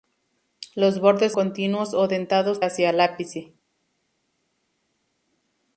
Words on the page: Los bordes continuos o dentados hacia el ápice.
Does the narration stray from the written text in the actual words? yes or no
no